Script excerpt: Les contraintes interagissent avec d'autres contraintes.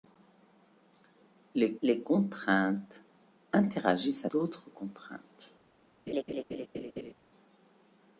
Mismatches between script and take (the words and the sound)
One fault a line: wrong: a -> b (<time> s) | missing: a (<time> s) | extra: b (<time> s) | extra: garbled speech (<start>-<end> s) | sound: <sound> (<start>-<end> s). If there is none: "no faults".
extra: les (1.8 s)
missing: avec (4.3 s)
sound: laugh (6.1-7.1 s)